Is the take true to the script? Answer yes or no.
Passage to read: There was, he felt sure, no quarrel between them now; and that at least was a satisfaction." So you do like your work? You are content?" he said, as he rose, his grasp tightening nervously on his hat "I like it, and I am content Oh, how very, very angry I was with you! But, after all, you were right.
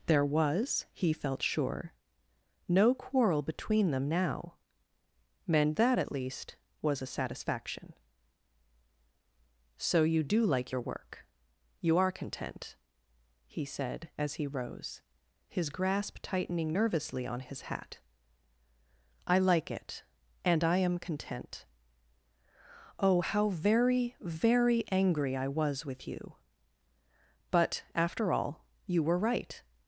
yes